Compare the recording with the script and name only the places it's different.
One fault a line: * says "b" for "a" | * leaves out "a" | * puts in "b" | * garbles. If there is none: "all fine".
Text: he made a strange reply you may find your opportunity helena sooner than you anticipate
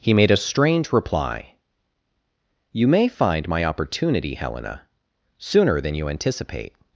* says "my" for "your"